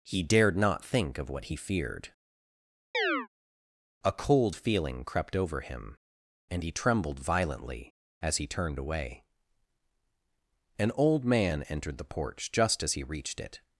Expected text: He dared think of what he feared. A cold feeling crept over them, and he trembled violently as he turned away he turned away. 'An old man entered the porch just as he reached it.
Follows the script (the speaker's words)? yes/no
no